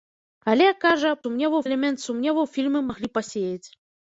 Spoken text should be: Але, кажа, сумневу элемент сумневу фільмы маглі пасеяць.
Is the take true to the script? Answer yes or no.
yes